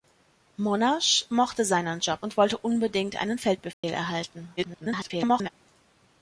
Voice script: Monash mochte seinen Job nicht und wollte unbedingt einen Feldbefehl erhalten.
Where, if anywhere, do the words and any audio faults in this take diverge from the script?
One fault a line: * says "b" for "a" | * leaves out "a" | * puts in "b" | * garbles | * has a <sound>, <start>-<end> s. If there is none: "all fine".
* leaves out "nicht"
* has a dropout, 3.7-3.8 s
* garbles